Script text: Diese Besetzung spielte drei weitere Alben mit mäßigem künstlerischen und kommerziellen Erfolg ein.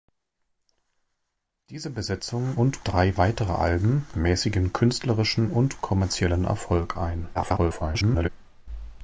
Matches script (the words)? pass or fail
fail